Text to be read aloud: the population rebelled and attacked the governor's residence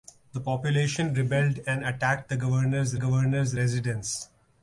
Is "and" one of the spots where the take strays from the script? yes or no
no